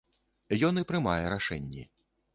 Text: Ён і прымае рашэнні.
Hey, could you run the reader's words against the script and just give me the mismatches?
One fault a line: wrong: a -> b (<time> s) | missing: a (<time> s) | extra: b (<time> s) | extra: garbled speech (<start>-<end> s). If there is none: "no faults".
no faults